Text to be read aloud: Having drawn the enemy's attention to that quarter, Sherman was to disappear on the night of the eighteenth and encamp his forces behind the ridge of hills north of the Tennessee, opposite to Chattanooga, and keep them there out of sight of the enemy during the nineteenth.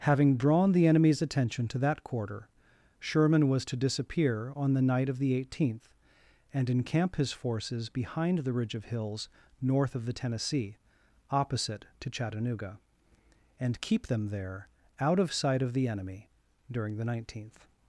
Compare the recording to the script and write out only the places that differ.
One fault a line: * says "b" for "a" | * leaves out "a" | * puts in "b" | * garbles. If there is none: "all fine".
all fine